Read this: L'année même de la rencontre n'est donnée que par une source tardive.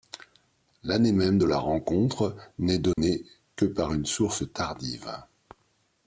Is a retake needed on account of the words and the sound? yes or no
yes